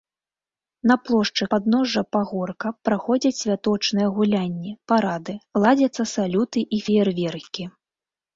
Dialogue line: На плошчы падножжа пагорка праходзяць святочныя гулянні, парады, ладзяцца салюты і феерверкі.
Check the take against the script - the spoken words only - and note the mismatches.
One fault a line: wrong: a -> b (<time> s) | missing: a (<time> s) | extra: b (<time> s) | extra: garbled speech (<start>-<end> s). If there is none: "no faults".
no faults